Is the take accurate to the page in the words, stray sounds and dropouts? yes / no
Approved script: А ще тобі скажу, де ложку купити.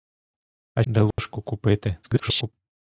no